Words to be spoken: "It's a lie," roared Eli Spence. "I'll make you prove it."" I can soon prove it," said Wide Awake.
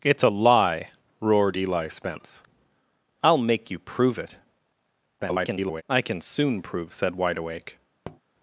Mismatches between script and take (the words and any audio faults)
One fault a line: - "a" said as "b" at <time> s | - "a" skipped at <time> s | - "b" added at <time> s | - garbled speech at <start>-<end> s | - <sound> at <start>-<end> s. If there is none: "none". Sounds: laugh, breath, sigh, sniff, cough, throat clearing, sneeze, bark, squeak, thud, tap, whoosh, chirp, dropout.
- garbled speech at 5.2-5.8 s
- "it" skipped at 6.9 s
- tap at 8.0-8.2 s